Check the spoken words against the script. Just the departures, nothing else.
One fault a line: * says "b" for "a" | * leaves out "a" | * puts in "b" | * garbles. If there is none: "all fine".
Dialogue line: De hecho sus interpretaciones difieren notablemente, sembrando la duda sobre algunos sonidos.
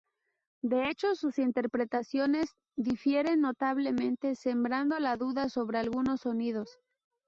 all fine